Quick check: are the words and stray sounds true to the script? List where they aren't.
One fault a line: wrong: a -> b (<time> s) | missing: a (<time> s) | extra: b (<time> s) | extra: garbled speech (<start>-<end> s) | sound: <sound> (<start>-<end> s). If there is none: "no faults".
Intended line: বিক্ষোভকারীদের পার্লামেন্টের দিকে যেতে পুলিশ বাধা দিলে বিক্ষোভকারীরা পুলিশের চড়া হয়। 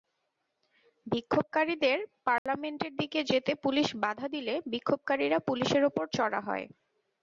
sound: dropout (2.4-2.5 s)
extra: ওপর (5.9 s)